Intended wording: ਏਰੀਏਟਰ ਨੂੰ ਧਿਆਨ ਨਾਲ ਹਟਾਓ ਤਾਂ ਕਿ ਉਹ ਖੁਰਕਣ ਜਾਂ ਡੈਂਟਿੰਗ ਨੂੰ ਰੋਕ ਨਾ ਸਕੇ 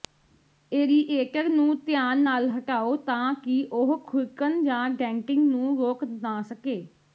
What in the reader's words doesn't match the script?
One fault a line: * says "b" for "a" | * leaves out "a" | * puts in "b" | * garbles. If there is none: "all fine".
all fine